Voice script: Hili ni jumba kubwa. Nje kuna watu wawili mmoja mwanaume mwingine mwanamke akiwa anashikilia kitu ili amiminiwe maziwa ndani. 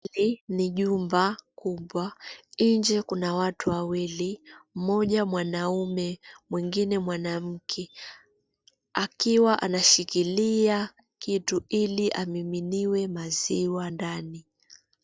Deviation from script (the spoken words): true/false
false